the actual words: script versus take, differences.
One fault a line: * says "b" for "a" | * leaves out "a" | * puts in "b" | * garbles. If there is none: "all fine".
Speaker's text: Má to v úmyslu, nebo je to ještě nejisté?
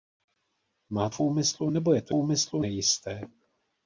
* leaves out "to"
* says "úmyslu" for "ještě"